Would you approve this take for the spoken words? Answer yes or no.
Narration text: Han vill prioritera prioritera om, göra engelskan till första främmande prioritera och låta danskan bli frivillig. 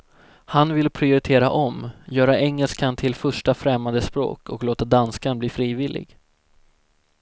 no